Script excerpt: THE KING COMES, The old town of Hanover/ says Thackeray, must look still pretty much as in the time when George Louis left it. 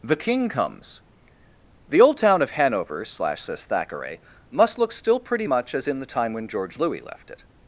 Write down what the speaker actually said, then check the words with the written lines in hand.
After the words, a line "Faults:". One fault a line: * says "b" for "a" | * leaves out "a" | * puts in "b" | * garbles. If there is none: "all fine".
THE KING COMES, The old town of Hanover/ slash says Thackeray, must look still pretty much as in the time when George Louis left it.
Faults:
* puts in "slash"